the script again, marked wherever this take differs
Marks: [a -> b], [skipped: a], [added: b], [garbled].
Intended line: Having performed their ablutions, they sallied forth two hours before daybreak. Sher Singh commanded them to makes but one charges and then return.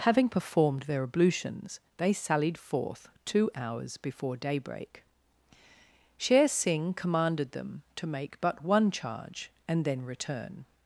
Having performed their ablutions, they sallied forth two hours before daybreak. Sher Singh commanded them to [makes -> make] but one [charges -> charge] and then return.